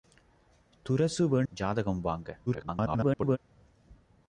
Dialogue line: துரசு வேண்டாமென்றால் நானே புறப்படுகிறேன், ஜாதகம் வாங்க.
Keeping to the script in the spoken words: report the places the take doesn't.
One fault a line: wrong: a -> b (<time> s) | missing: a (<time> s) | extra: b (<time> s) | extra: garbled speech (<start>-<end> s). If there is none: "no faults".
missing: வேண்டாமென்றால் நானே புறப்படுகிறேன் (1.4 s)
extra: garbled speech (2.5-3.4 s)